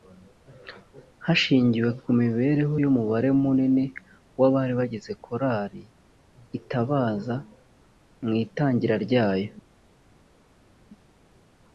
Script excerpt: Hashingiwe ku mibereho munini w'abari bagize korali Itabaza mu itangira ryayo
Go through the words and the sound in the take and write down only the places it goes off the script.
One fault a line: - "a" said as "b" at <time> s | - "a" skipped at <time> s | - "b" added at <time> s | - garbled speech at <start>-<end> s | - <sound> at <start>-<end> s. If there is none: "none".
- "y'umubare" added at 2.8 s